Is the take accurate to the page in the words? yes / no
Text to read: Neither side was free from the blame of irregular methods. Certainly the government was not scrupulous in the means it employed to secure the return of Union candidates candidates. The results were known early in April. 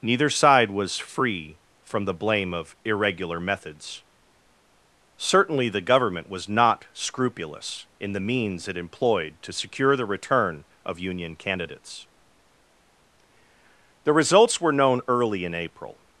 no